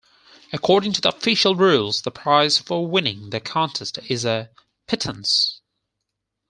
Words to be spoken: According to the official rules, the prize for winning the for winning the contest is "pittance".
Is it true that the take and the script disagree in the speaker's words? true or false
true